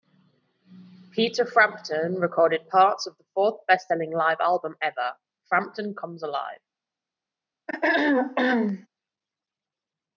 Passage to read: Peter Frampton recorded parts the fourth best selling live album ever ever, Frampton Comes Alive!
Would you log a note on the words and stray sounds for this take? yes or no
yes